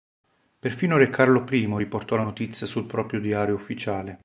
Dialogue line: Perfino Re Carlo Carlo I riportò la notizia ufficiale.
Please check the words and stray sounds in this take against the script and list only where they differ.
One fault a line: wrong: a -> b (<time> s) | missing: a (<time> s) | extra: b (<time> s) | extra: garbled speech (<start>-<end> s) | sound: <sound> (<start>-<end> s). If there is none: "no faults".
missing: Carlo (1.4 s)
extra: sul proprio diario (2.7 s)